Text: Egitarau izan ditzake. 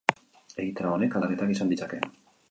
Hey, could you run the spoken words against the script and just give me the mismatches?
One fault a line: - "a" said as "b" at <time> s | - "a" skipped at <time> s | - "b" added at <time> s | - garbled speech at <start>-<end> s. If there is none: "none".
- "honek aldaketak" added at 0.9 s